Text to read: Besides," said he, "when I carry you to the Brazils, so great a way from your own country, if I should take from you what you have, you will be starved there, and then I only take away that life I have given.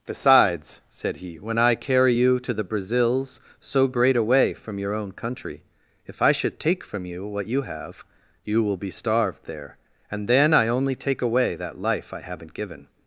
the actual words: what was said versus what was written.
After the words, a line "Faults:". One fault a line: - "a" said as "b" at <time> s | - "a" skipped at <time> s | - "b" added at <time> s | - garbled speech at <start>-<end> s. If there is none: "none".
Besides," said he, "when I carry you to the Brazils, so great a way from your own country, if I should take from you what you have, you will be starved there, and then I only take away that life I haven't given.
Faults:
- "have" said as "haven't" at 12.2 s